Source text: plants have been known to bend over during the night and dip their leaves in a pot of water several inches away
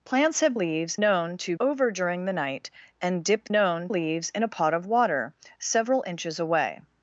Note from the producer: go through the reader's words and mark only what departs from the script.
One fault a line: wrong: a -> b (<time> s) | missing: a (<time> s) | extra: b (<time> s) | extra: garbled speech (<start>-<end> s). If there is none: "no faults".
wrong: been -> leaves (0.5 s)
missing: bend (1.5 s)
wrong: their -> known (3.5 s)